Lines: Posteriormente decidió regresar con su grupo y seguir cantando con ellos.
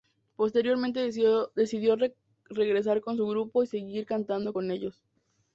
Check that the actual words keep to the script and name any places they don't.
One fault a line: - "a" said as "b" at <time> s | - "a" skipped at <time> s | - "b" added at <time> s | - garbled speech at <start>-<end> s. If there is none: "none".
none